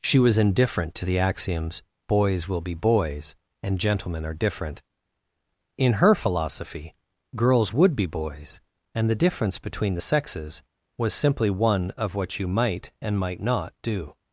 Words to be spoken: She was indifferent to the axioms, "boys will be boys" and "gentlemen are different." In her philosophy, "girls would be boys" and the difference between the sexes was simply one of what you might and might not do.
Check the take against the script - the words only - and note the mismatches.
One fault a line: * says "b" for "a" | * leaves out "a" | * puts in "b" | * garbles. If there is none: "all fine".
all fine